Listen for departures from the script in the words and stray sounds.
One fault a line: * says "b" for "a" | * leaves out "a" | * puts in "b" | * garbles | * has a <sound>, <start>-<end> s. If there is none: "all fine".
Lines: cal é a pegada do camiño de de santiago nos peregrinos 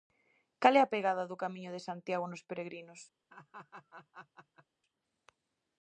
* leaves out "de"
* has a laugh, 3.3-4.7 s